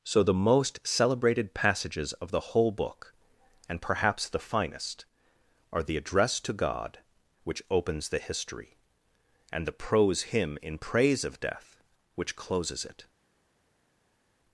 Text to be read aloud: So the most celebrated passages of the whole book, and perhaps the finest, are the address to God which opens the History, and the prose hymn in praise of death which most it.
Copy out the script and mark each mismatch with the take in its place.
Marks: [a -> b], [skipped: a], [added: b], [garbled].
So the most celebrated passages of the whole book, and perhaps the finest, are the address to God which opens the History, and the prose hymn in praise of death which [most -> closes] it.